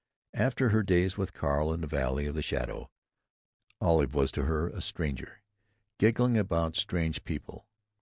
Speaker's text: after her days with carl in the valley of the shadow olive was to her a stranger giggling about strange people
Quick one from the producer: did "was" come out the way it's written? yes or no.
yes